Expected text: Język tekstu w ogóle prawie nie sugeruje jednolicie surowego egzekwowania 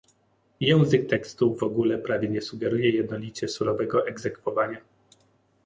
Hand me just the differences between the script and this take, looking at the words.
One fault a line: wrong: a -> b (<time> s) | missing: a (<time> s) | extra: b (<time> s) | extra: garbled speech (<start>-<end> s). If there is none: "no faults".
no faults